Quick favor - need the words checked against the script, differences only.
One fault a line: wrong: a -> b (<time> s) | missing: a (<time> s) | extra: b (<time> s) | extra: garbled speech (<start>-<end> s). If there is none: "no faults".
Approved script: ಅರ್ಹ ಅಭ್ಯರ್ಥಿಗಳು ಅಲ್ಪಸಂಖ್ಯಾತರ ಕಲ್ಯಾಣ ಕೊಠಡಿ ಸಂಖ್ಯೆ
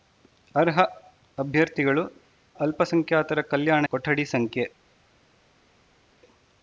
no faults